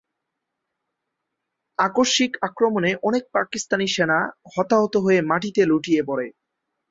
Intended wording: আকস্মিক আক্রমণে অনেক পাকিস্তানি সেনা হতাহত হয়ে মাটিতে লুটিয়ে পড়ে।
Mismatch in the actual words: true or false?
false